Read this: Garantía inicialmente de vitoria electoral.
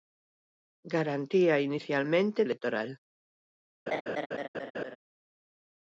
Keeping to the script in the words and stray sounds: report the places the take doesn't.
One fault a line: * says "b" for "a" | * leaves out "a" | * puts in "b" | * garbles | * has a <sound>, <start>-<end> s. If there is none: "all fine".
* leaves out "de vitoria"
* has a laugh, 3.9-5.0 s